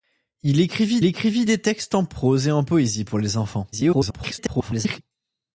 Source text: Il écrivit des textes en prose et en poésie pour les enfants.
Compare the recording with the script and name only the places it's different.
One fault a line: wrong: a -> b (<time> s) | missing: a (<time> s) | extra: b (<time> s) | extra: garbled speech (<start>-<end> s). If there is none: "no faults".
extra: écrivit (1.0 s)
extra: garbled speech (3.7-5.0 s)